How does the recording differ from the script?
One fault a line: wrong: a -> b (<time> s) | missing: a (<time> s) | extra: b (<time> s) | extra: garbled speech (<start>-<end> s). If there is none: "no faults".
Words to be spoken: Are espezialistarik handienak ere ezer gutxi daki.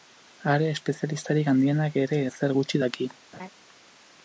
no faults